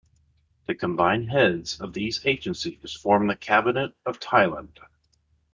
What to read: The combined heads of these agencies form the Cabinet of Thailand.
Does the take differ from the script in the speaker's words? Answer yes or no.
no